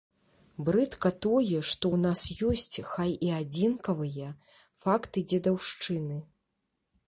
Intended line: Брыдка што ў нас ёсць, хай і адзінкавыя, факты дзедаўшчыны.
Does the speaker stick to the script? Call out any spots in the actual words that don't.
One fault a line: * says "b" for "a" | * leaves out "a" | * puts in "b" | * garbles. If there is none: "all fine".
* puts in "тое"